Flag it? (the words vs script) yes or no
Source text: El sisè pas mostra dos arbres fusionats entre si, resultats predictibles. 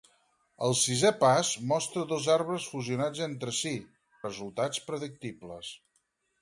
no